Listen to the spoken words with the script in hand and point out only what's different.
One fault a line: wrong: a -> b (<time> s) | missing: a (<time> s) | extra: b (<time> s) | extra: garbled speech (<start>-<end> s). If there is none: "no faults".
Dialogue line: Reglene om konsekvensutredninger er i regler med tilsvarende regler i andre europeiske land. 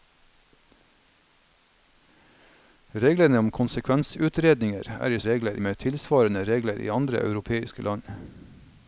no faults